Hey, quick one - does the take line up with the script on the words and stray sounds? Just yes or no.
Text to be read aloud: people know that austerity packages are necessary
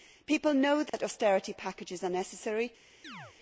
no